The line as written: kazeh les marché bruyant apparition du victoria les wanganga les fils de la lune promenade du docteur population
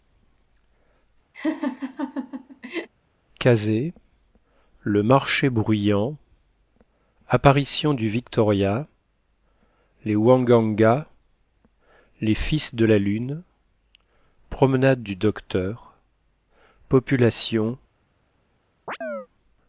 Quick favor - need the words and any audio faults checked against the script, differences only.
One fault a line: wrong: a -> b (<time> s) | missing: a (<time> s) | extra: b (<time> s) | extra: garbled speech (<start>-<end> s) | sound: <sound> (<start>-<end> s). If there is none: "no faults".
sound: laugh (1.3-2.9 s)
wrong: les -> le (4.8 s)
sound: chirp (18.9-19.3 s)